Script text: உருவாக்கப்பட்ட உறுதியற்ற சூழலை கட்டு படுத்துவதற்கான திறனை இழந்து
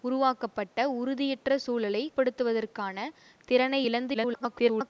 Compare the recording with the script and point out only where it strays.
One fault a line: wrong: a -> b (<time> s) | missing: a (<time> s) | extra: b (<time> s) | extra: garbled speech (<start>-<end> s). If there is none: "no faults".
missing: கட்டு (2.0 s)
extra: garbled speech (4.1-4.9 s)